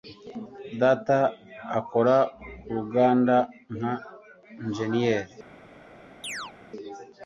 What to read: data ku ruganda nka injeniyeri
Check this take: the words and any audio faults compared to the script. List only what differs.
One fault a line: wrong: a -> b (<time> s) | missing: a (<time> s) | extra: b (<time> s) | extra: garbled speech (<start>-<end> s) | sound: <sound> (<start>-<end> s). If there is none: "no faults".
extra: akora (1.8 s)
sound: chirp (6.2-6.5 s)